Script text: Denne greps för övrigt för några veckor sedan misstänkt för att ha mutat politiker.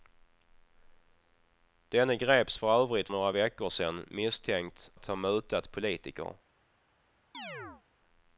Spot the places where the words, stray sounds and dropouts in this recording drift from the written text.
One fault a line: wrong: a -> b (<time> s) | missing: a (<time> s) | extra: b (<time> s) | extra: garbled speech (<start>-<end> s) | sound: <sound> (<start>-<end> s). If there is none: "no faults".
missing: för (3.1 s)
missing: för (4.9 s)
sound: chirp (7.3-7.8 s)